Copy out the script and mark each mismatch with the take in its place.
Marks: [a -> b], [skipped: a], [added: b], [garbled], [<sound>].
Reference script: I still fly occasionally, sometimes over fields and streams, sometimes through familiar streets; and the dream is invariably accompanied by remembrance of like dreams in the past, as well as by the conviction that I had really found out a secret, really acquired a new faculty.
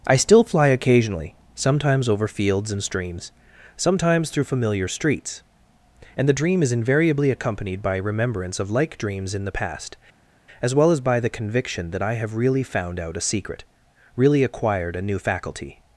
I still fly occasionally, sometimes over fields and streams, sometimes through familiar streets; and the dream is invariably accompanied by remembrance of like dreams in the past, as well as by the conviction that I [had -> have] really found out a secret, really acquired a new faculty.